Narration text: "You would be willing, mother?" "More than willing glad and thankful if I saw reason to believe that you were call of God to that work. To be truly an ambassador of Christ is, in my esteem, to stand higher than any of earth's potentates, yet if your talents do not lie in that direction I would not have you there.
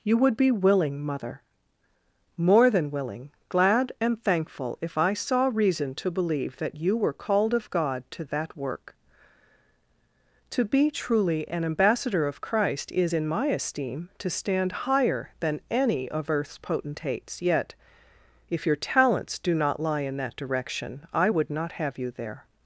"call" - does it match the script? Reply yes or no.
no